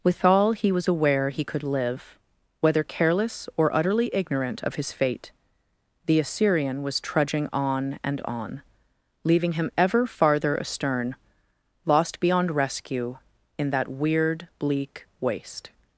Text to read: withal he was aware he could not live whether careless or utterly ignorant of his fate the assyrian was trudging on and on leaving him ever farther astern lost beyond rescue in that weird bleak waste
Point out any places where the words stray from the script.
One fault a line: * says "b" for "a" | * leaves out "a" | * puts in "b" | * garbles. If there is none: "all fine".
* leaves out "not"